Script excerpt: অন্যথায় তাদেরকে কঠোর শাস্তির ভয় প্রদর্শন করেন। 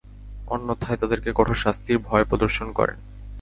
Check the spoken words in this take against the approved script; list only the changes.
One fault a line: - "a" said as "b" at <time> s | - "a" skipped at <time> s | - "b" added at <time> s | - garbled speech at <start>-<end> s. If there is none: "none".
none